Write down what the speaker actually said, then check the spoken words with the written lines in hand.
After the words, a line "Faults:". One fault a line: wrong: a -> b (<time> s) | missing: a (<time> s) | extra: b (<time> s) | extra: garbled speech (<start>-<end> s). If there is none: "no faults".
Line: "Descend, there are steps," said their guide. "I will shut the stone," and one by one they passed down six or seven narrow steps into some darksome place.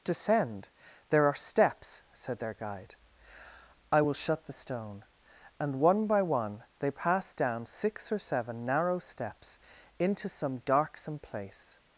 "Descend, there are steps," said their guide. "I will shut the stone," and one by one they passed down six or seven narrow steps into some darksome place.
Faults:
no faults